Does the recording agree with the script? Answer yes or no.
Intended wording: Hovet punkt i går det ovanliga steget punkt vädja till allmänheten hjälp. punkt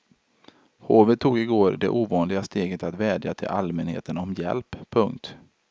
no